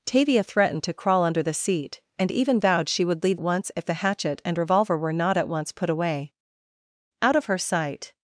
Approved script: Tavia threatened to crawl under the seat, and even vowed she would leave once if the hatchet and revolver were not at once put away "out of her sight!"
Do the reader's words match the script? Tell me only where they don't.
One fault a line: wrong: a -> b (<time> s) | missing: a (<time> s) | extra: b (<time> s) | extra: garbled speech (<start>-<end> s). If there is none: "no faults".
no faults